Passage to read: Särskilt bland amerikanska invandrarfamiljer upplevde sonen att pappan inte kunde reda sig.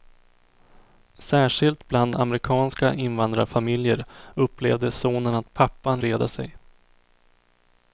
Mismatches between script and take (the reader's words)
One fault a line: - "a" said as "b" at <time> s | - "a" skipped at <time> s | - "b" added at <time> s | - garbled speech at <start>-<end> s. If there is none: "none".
- "inte kunde" skipped at 6.0 s